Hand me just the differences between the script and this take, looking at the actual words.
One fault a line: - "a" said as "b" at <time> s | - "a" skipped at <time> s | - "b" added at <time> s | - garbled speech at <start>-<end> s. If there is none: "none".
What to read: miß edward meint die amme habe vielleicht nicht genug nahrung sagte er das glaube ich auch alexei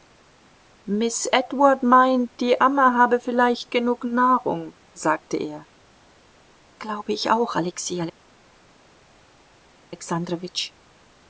- "nicht" skipped at 3.7 s
- "das" skipped at 5.7 s